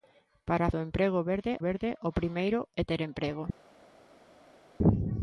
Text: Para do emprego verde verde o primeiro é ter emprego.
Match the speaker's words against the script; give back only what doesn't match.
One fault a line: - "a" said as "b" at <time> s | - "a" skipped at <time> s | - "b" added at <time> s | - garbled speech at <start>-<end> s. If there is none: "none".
none